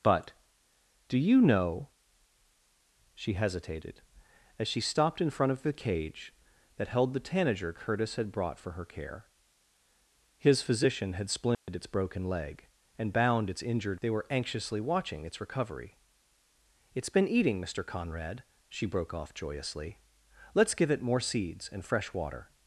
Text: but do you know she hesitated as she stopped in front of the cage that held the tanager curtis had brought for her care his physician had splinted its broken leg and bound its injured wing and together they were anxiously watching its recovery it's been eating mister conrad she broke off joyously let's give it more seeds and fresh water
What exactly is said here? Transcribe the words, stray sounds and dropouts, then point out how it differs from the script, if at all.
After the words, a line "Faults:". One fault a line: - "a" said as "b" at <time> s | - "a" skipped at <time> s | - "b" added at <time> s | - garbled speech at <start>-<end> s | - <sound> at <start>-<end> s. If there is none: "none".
but do you know she hesitated as she stopped in front of the cage that held the tanager curtis had brought for her care his physician had splinted its broken leg and bound its injured they were anxiously watching its recovery it's been eating mister conrad she broke off joyously let's give it more seeds and fresh water
Faults:
- dropout at 11.5-11.7 s
- "wing and together" skipped at 14.0 s